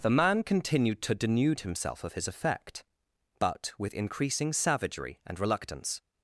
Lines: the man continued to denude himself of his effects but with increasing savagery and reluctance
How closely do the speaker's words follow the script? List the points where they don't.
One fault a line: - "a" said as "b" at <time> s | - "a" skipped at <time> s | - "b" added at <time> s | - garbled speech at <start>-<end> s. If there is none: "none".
- "effects" said as "effect" at 2.3 s